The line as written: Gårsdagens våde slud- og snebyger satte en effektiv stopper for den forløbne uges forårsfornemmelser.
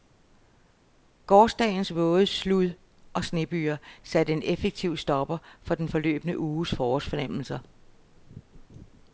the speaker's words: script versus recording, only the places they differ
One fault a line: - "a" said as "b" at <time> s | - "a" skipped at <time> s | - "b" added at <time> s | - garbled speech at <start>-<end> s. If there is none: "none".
none